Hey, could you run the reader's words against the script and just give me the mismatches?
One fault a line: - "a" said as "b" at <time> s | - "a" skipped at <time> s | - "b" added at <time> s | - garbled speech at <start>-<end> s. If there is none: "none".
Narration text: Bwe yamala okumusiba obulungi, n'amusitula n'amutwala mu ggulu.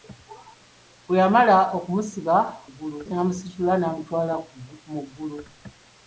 - "obulungi" said as "ggulu" at 2.7 s